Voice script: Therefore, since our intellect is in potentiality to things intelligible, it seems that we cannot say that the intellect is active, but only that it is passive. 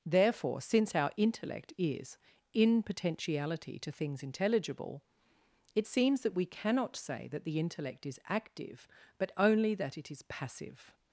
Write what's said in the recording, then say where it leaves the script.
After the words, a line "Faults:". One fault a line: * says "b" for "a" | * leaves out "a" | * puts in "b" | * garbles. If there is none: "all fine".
Therefore, since our intellect is in potentiality to things intelligible, it seems that we cannot say that the intellect is active, but only that it is passive.
Faults:
all fine